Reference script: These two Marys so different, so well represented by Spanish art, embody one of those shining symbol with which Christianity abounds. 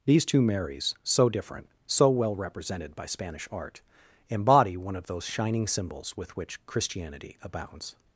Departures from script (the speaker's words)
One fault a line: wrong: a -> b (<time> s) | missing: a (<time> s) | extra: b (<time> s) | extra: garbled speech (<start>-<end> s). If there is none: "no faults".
wrong: symbol -> symbols (5.7 s)